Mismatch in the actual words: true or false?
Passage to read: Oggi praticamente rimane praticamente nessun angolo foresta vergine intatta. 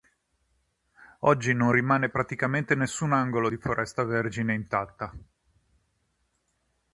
true